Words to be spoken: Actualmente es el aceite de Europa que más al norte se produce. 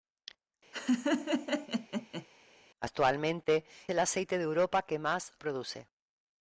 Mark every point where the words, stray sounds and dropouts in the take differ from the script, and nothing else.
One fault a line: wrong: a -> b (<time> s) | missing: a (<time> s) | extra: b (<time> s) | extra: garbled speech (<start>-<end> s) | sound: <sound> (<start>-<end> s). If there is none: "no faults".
sound: laugh (0.7-2.3 s)
missing: es (3.6 s)
missing: al norte se (5.3 s)